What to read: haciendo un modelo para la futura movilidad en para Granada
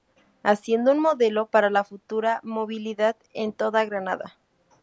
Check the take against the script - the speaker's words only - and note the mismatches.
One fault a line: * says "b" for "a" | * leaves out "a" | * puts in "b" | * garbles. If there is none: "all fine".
* says "toda" for "para"